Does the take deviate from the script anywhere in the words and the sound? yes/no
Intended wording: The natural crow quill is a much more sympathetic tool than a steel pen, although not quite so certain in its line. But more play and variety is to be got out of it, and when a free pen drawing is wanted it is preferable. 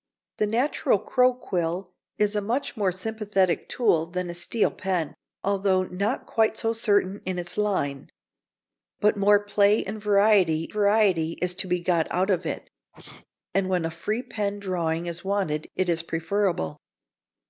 yes